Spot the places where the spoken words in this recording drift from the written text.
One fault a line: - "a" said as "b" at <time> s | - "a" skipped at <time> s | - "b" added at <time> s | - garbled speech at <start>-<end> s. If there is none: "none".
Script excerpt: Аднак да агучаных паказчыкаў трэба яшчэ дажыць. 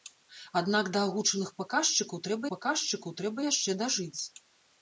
- "паказчыкаў трэба" added at 2.5 s